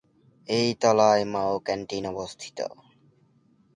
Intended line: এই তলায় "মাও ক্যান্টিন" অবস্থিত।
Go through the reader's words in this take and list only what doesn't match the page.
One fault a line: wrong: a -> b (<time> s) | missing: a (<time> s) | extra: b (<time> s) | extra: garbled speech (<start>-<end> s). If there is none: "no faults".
no faults